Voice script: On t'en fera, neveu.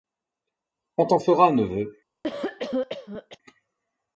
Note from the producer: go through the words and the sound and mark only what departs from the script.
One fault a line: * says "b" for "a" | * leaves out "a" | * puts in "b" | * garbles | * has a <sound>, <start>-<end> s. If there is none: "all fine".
* has a cough, 2.2-3.4 s